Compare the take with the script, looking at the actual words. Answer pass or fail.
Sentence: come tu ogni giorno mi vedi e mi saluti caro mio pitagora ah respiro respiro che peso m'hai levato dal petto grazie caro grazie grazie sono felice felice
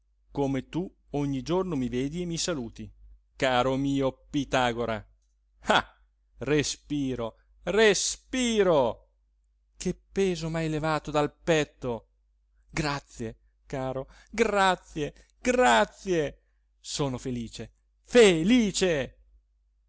pass